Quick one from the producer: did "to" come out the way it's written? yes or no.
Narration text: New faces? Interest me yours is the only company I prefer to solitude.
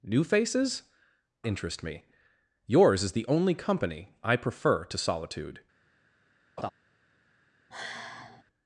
yes